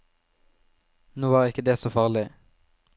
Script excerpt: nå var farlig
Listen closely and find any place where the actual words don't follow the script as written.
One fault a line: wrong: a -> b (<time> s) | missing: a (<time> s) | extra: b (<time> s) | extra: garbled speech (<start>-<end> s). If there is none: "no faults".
extra: ikke det så (1.5 s)